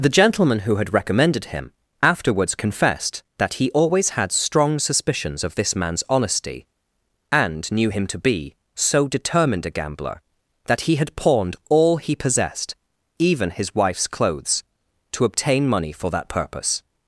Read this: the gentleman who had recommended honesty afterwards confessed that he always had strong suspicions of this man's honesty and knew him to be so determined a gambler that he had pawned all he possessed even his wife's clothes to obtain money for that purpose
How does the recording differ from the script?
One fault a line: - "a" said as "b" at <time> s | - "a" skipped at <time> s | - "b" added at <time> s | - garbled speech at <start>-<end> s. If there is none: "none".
- "honesty" said as "him" at 1.5 s